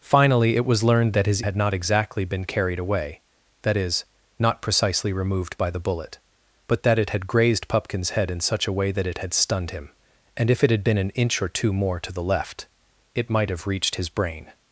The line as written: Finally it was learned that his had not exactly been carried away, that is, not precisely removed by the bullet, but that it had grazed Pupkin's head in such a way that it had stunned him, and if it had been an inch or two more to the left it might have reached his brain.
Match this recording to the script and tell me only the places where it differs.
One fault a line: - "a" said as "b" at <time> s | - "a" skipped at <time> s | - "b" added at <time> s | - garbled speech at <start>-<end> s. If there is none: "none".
none